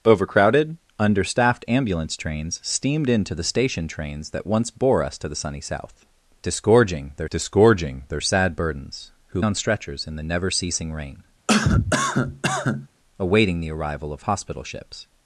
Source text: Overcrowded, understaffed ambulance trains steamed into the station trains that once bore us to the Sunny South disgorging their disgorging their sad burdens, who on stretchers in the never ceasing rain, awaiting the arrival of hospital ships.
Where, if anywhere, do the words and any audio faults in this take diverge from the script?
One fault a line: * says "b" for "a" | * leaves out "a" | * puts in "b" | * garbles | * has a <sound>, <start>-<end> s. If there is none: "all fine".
* has a cough, 11.5-12.9 s